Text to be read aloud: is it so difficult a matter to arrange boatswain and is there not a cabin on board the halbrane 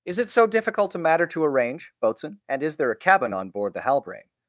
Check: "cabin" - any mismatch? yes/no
no